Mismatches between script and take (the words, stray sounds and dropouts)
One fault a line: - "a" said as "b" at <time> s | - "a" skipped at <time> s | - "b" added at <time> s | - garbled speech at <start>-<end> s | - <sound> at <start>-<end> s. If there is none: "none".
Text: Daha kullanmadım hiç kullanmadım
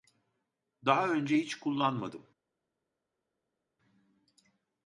- "kullanmadım" said as "önce" at 1.1 s